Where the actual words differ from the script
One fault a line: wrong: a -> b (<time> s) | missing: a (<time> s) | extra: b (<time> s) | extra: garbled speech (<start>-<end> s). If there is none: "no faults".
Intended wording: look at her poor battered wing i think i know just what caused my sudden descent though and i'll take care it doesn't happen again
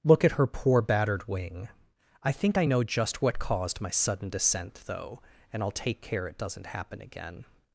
no faults